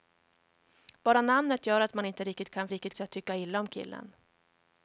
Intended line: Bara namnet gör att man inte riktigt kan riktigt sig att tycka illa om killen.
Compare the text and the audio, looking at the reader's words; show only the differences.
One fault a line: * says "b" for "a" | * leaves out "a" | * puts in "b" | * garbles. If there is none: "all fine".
all fine